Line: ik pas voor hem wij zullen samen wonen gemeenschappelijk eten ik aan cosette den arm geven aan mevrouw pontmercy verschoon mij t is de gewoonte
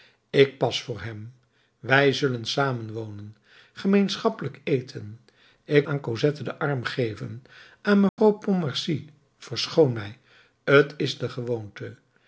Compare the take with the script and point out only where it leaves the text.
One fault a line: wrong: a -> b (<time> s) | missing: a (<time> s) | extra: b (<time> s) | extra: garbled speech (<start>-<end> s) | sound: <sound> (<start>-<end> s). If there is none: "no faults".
sound: dropout (8.1-8.2 s)